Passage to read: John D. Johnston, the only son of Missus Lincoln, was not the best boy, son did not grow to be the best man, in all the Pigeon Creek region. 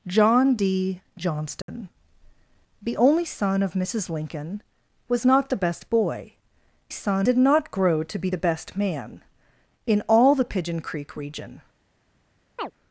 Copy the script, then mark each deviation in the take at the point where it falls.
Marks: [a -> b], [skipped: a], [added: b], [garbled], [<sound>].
John D. Johnston, [dropout] the only son of Missus Lincoln, was not the best boy, son did not grow to be the best man, in all the Pigeon Creek region. [chirp]